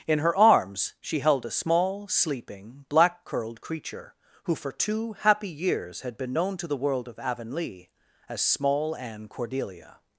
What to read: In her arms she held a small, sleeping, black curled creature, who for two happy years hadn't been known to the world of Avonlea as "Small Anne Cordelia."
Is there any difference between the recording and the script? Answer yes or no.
yes